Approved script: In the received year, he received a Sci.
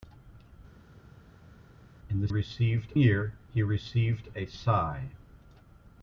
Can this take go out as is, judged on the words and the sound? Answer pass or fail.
pass